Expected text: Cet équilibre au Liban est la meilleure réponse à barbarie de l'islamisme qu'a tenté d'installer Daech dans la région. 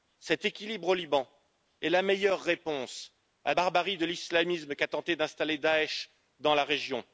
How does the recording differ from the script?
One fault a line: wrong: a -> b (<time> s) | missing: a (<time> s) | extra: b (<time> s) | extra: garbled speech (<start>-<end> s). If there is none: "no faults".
no faults